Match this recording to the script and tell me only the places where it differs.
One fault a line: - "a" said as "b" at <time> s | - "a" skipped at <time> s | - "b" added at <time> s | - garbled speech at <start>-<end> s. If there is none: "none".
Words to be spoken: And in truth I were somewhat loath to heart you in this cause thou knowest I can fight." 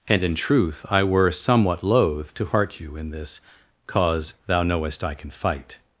none